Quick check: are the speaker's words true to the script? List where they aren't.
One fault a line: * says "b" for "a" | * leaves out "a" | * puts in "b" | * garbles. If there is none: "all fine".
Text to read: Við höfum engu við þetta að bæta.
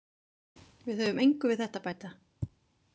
all fine